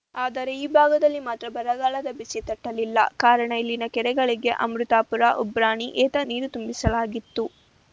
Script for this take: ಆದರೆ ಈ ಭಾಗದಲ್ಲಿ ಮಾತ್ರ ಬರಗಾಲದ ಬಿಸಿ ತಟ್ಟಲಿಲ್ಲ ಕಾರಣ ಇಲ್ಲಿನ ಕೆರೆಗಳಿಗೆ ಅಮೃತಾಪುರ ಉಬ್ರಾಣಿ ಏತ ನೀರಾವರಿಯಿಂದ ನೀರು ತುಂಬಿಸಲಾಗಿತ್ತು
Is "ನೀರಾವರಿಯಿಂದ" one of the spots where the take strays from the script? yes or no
yes